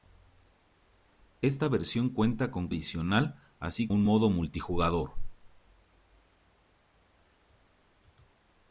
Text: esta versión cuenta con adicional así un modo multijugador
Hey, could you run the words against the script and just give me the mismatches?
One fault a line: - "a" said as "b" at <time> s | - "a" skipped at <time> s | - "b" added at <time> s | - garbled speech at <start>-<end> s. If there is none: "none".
none